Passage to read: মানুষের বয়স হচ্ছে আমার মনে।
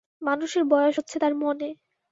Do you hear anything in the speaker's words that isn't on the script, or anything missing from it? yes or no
yes